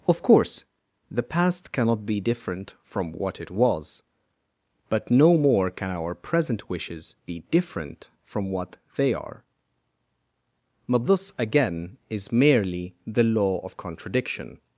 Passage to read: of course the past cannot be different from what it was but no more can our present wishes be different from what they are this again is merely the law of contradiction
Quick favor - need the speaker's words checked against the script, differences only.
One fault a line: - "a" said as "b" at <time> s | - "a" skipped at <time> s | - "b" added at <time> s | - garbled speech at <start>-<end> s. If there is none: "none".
- "but" added at 10.9 s